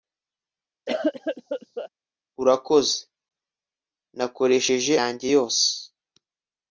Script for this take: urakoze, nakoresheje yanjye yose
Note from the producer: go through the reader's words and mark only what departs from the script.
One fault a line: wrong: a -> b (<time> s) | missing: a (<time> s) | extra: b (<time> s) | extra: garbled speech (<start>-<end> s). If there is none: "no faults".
no faults